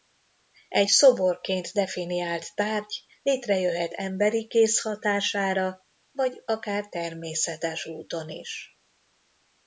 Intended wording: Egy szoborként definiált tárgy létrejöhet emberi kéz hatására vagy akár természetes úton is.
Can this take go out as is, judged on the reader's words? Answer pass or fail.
pass